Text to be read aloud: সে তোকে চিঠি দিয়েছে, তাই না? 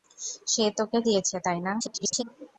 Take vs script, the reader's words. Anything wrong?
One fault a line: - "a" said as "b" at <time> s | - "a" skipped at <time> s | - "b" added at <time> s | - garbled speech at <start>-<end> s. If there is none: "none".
- "চিঠি" skipped at 1.0 s
- garbled speech at 1.8-2.2 s